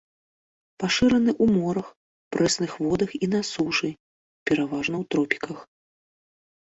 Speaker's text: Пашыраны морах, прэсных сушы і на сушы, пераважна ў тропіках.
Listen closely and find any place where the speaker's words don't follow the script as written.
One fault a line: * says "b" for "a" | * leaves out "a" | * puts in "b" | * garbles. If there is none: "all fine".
* puts in "ў"
* says "водах" for "сушы"